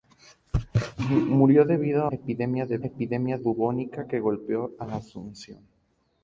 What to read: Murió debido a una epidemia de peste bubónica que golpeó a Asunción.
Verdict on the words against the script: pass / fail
fail